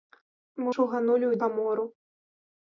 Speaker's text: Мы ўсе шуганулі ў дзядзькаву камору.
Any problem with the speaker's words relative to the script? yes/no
yes